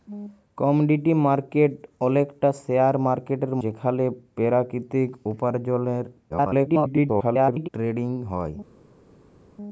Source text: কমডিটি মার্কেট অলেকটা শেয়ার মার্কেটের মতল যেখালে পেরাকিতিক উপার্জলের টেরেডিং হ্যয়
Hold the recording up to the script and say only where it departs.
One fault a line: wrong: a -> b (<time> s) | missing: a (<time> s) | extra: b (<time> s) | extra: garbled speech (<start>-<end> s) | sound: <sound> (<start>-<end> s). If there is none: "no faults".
missing: মতল (3.5 s)
extra: garbled speech (6.3-7.7 s)